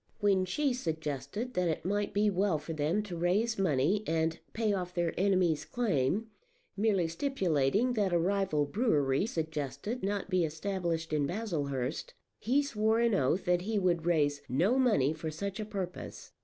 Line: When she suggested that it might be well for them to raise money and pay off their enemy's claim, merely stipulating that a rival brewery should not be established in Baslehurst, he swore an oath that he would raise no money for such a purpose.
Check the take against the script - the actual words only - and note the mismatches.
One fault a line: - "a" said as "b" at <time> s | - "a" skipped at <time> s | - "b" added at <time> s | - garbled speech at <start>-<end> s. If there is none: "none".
- "should" said as "suggested" at 9.2 s